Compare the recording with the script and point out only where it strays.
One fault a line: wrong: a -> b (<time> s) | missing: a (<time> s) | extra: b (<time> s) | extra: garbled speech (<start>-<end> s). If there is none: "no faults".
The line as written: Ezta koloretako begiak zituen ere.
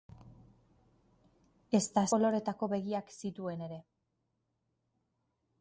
no faults